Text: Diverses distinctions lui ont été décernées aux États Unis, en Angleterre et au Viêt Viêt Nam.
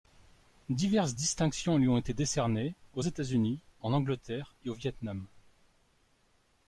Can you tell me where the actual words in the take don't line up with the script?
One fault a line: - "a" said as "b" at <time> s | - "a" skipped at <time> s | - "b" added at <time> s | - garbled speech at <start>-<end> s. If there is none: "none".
- "Viêt" skipped at 4.9 s